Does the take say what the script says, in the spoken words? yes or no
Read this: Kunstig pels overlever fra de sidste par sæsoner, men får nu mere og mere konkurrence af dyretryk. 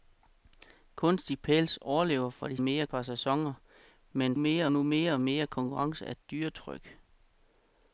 no